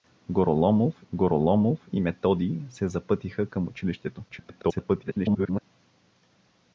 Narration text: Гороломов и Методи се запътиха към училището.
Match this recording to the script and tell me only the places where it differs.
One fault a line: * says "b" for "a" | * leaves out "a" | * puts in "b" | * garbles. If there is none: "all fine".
* puts in "гороломов"
* garbles